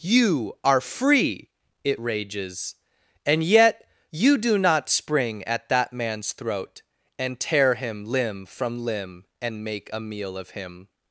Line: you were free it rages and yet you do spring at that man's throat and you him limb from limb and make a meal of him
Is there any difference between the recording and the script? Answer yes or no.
yes